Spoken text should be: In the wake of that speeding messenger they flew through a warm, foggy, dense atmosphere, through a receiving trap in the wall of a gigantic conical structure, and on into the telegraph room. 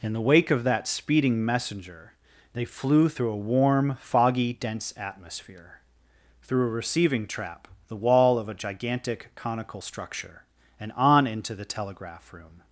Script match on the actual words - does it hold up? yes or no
no